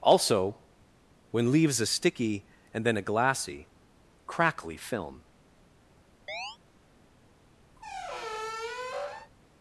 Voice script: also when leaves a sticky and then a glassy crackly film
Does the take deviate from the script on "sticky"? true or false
false